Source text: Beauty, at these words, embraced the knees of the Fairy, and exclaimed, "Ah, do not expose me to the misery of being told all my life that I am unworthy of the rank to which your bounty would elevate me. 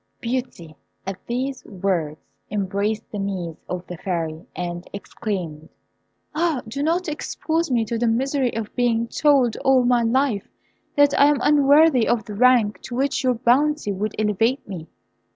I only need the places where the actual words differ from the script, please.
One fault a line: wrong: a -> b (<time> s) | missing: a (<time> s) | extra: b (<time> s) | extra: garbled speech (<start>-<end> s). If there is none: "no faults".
no faults